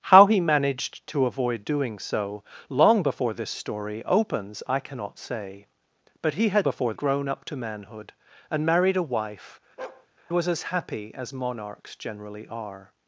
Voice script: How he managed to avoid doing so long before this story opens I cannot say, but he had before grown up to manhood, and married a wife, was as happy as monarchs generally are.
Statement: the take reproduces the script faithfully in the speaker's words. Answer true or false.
true